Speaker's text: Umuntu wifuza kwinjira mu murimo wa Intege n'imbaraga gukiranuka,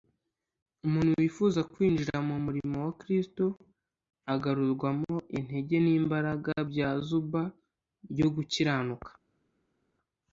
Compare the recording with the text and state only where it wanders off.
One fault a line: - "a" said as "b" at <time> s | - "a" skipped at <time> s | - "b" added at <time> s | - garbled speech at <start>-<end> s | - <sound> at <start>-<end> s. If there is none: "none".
- "Kristo agarurwamo" added at 3.0 s
- "bya Zuba ryo" added at 6.7 s